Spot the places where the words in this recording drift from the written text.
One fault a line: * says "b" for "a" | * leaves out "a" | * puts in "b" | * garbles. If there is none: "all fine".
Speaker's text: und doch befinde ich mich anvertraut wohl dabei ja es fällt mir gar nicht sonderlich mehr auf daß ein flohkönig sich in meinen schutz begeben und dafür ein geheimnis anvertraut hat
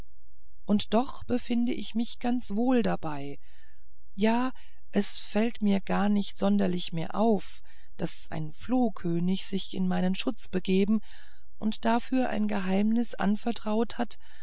* says "ganz" for "anvertraut"